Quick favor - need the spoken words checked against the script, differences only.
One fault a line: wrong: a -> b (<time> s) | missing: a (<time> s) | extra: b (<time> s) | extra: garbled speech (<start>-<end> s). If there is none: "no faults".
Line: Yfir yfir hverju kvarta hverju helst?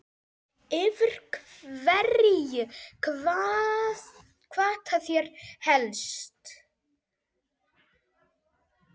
missing: yfir (1.1 s)
wrong: hverju -> þeir (5.1 s)